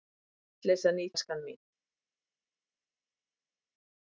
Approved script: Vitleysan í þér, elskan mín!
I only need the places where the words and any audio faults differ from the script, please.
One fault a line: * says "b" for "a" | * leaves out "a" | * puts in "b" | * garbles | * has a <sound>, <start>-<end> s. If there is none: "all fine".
* leaves out "þér"